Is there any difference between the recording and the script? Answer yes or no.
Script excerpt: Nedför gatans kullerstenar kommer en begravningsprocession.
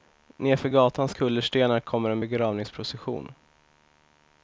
no